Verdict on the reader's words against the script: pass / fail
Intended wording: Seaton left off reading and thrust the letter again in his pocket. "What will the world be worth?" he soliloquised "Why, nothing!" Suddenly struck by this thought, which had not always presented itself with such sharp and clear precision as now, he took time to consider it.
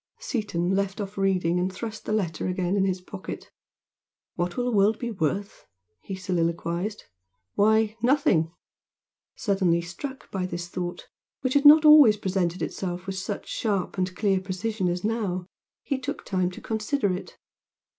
pass